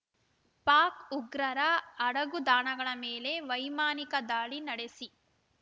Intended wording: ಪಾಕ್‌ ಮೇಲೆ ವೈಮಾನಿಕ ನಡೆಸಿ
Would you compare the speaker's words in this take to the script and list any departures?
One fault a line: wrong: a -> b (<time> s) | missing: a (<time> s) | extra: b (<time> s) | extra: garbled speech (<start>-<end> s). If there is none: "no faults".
extra: ಉಗ್ರರ ಅಡಗುದಾಣಗಳ (1.1 s)
extra: ದಾಳಿ (4.3 s)